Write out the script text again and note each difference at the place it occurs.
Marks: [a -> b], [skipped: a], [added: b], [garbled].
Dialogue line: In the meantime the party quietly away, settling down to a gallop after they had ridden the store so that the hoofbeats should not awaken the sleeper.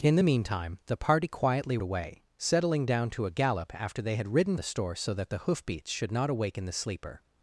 In the meantime the party quietly away, settling down to a gallop after they had ridden the store so that the hoofbeats should not awaken the sleeper.